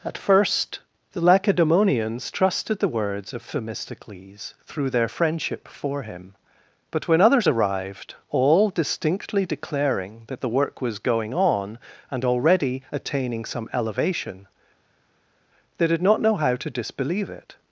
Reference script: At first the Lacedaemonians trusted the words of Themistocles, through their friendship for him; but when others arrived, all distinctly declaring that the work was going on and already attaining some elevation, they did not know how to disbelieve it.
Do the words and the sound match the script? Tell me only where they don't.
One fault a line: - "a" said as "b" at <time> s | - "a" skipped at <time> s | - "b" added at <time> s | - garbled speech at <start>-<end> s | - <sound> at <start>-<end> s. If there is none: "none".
none